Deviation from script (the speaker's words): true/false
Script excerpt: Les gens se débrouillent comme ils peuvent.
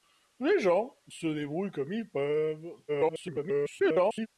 true